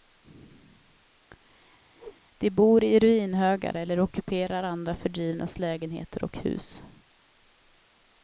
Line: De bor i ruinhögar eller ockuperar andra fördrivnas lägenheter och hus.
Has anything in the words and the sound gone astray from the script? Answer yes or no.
yes